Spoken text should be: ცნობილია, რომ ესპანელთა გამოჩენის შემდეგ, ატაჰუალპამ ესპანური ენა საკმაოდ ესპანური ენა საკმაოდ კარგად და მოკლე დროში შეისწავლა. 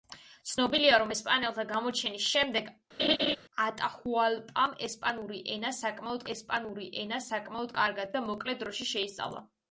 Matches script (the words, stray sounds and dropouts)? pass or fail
fail